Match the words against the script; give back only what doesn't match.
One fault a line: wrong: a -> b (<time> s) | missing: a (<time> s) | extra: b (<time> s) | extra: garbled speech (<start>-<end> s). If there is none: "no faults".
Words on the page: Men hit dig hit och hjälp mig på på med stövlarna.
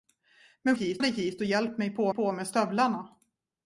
no faults